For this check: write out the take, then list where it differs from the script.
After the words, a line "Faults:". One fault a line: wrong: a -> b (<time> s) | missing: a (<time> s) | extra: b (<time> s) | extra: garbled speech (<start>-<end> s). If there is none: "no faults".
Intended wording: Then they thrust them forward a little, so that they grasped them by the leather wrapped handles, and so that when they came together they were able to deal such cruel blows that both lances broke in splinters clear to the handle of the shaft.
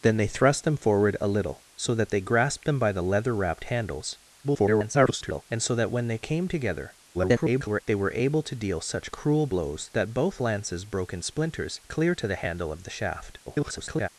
Then they thrust them forward a little, so that they grasped them by the leather wrapped handles, [garbled] and so that when they came together [garbled] they were able to deal such cruel blows that both lances broke in splinters clear to the handle of the shaft. [garbled]
Faults:
extra: garbled speech (4.4-5.4 s)
extra: garbled speech (7.1-7.8 s)
extra: garbled speech (13.5-14.1 s)